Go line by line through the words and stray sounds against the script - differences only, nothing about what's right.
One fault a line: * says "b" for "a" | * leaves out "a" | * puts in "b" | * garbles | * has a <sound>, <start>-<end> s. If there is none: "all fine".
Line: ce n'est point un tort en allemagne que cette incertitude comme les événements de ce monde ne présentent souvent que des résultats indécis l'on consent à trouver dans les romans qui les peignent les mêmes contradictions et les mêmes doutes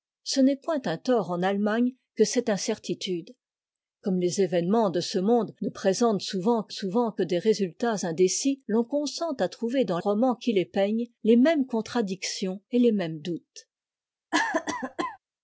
* puts in "souvent que"
* leaves out "les"
* has a cough, 14.3-15.2 s